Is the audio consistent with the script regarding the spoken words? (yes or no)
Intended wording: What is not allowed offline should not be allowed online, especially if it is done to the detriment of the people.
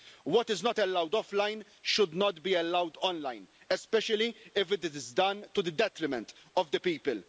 yes